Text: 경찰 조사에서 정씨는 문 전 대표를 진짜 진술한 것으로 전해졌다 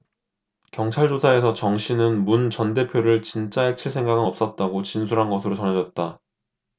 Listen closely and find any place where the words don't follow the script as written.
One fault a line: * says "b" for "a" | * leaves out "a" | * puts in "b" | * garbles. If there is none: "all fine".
* puts in "해칠 생각은 없었다고"